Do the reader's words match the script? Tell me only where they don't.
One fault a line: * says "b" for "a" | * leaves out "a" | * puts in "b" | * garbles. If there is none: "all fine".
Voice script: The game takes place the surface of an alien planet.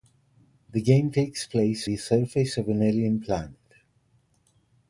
all fine